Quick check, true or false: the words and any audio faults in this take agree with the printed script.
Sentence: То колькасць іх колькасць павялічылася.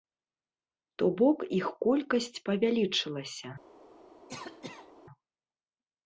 false